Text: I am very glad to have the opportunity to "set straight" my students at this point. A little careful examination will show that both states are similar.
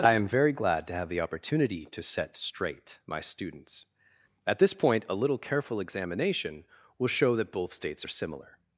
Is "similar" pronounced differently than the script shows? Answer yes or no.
no